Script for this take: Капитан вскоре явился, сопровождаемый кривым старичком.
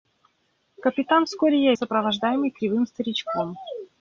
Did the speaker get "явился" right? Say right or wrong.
wrong